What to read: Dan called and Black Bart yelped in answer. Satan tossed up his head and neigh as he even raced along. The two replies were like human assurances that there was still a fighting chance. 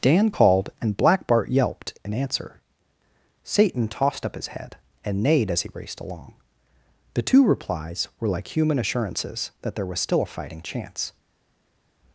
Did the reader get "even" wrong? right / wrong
wrong